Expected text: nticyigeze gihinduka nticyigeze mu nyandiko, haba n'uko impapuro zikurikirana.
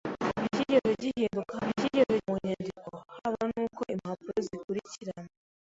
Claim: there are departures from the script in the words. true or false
false